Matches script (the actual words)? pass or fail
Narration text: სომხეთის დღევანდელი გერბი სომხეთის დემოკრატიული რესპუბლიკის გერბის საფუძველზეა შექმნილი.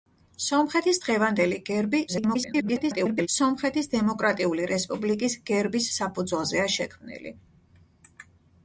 fail